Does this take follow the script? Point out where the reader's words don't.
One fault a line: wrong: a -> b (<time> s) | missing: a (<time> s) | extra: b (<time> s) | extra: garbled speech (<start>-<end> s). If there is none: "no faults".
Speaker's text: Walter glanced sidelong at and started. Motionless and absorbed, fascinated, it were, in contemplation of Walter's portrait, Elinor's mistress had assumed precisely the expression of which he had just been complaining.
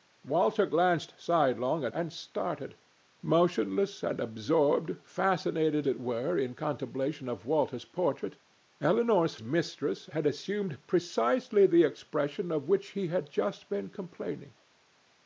no faults